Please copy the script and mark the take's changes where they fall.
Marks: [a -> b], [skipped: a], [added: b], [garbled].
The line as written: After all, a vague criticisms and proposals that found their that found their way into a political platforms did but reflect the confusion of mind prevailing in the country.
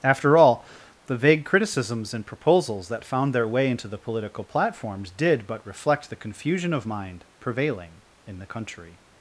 After all, [a -> the] vague criticisms and proposals that found their [skipped: that found their] way into [a -> the] political platforms did but reflect the confusion of mind prevailing in the country.